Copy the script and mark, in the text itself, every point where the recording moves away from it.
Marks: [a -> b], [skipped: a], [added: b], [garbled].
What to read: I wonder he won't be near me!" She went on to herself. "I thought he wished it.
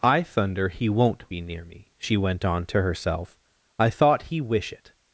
I [wonder -> thunder] he won't be near me!" She went on to herself. "I thought he [wished -> wish] it.